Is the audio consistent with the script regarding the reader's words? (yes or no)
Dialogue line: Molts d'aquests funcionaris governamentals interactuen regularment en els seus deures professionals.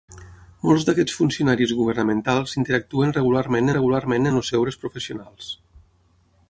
no